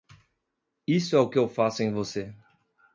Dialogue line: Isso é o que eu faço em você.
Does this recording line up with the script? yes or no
yes